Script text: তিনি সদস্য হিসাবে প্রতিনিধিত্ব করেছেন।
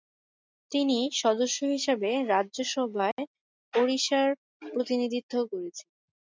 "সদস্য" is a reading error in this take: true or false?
false